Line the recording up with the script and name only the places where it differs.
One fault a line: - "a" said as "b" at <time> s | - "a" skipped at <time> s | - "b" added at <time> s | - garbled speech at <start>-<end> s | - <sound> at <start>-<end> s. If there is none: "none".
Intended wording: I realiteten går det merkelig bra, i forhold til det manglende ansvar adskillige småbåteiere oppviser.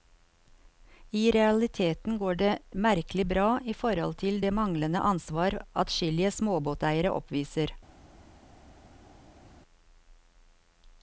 none